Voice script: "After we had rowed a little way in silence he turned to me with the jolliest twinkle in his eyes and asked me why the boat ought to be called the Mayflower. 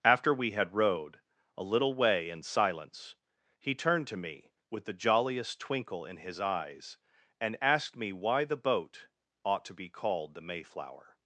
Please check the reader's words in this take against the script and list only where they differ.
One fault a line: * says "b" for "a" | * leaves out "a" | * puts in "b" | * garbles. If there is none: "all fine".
all fine